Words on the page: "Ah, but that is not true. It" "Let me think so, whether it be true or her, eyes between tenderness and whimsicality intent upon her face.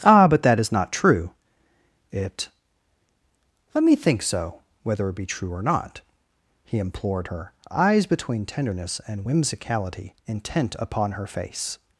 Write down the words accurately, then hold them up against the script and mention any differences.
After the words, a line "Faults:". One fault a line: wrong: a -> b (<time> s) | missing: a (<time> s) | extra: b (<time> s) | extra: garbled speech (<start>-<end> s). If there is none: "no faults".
"Ah, but that is not true. It" "Let me think so, whether it be true or not," he implored her, eyes between tenderness and whimsicality intent upon her face.
Faults:
extra: not he implored (5.6 s)